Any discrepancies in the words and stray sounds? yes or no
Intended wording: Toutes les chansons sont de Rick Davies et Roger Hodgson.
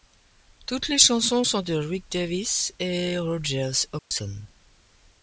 yes